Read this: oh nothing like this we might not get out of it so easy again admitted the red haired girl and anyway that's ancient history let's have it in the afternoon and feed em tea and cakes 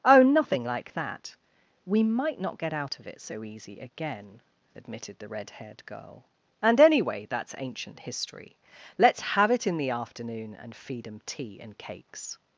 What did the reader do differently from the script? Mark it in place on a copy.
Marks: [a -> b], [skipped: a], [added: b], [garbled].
oh nothing like [this -> that] we might not get out of it so easy again admitted the red haired girl and anyway that's ancient history let's have it in the afternoon and feed em tea and cakes